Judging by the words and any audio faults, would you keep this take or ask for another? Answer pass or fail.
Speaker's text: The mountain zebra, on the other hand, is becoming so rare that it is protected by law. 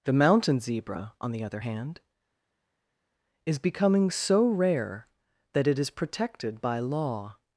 pass